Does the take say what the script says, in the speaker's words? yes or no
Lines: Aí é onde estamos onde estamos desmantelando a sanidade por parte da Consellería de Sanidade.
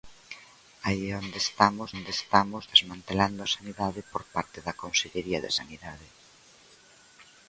yes